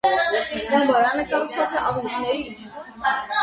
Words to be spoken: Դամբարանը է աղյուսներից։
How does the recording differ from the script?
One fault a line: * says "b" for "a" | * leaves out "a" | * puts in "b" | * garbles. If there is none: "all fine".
* puts in "կառուցված"